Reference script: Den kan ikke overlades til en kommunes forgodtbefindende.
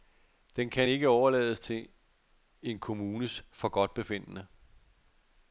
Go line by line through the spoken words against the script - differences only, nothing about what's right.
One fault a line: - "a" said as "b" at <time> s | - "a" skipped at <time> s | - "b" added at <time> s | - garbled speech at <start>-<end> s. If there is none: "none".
none